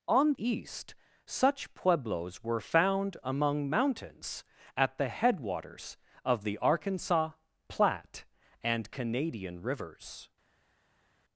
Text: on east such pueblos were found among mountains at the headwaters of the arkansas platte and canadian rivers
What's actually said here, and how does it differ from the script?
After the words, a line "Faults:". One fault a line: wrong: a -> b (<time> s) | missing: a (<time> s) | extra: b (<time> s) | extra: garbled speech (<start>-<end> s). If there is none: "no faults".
on east such pueblos were found among mountains at the headwaters of the arkansas platte and canadian rivers
Faults:
no faults